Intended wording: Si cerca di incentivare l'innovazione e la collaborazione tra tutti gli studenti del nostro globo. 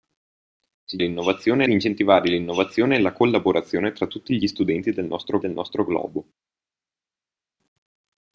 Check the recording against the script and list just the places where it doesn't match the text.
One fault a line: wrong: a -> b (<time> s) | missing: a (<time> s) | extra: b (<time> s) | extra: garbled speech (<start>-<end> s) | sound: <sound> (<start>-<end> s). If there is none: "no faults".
wrong: cerca -> l'innovazione (1.0 s)
extra: del nostro (5.4 s)